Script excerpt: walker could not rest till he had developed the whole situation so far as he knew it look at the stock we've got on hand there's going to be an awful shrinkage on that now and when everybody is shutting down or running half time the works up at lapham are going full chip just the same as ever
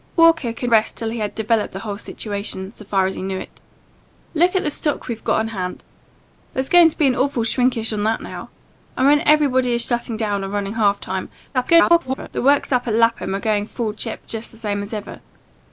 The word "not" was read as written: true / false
false